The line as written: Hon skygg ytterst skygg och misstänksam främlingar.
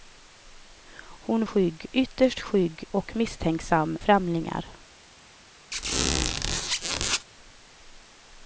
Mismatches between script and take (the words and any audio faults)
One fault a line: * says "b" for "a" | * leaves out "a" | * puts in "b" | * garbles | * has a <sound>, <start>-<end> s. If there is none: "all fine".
* has a squeak, 5.7-7.3 s